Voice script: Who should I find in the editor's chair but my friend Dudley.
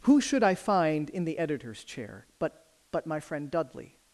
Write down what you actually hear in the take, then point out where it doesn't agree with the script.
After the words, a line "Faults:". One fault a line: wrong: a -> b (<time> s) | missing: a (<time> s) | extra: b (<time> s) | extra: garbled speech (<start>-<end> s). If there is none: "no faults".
Who should I find in the editor's chair but but my friend Dudley.
Faults:
extra: but (2.9 s)